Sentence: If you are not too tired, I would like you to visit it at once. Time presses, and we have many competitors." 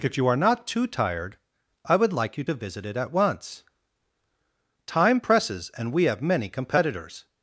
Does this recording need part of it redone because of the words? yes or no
no